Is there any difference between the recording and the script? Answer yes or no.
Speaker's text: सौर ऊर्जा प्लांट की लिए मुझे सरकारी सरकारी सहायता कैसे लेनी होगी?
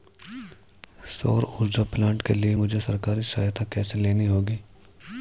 yes